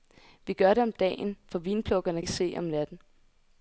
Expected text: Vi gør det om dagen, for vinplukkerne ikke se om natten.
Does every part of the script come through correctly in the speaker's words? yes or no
yes